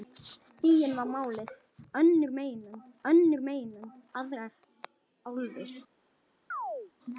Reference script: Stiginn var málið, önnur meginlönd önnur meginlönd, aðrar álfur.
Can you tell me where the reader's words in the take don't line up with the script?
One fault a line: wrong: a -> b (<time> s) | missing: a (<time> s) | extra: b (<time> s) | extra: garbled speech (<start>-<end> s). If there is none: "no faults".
no faults